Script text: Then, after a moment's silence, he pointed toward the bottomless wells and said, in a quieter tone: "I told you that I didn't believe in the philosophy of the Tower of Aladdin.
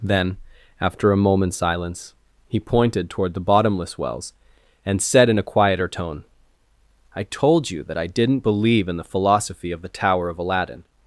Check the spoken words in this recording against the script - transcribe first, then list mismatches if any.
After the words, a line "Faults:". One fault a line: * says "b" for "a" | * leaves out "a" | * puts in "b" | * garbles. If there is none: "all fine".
Then, after a moment's silence, he pointed toward the bottomless wells and said, in a quieter tone: "I told you that I didn't believe in the philosophy of the Tower of Aladdin.
Faults:
all fine